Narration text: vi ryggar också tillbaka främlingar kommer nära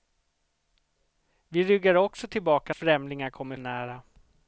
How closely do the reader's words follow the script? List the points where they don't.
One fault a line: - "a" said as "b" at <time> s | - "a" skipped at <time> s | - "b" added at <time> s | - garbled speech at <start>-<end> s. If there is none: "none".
none